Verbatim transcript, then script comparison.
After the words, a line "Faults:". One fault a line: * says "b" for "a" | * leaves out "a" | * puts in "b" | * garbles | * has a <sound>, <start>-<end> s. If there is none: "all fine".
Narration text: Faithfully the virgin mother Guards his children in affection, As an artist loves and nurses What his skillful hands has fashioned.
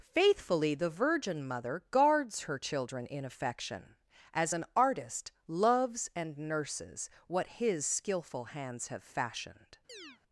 Faithfully the virgin mother Guards her children in affection, As an artist loves and nurses What his skillful hands have fashioned.
Faults:
* says "her" for "his"
* says "have" for "has"
* has a chirp, 9.9-10.2 s